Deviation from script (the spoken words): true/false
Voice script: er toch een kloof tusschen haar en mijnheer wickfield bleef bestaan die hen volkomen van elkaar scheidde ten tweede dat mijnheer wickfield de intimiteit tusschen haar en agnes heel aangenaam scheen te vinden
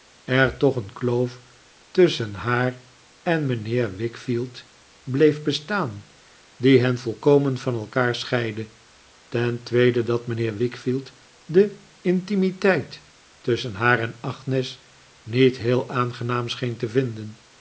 true